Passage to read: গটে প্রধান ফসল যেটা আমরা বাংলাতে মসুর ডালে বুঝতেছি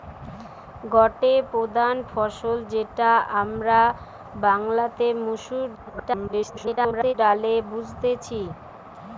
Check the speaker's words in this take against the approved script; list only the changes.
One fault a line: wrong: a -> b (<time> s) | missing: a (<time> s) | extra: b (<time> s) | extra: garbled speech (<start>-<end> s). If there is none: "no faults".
extra: garbled speech (5.7-7.1 s)